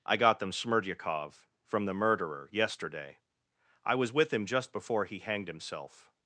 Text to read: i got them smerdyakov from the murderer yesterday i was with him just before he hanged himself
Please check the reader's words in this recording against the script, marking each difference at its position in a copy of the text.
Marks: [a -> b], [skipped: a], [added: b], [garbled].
i got them smerdyakov from the murderer yesterday i was with him just before he hanged himself